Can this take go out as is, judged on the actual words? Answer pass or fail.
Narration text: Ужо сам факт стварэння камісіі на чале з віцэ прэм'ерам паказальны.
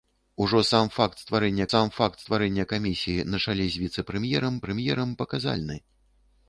fail